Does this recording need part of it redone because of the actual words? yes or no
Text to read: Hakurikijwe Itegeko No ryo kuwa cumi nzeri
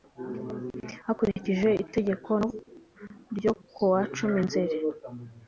yes